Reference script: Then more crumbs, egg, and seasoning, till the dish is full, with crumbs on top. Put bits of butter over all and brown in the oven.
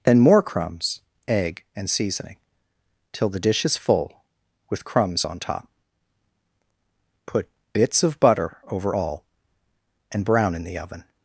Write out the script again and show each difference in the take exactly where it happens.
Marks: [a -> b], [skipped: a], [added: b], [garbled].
Then more crumbs, egg, and seasoning, till the dish is full, with crumbs on top. Put bits of butter over all and brown in the oven.